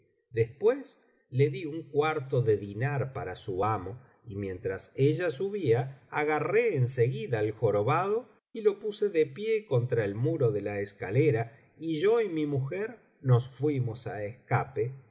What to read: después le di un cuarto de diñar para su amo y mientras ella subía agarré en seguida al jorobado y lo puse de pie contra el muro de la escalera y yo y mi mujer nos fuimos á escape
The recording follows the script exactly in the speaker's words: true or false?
true